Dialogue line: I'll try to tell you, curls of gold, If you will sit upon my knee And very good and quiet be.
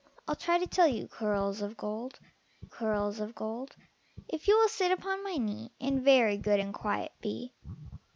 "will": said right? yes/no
yes